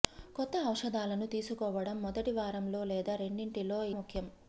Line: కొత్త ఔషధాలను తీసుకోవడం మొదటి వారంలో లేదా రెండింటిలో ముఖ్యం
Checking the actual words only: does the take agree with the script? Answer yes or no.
yes